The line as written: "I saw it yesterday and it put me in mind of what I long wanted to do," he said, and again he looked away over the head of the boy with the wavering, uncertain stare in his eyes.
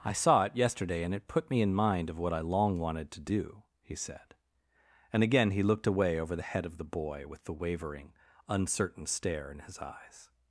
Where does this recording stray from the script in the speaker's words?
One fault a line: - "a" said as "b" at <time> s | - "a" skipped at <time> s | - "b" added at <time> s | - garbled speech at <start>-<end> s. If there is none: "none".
none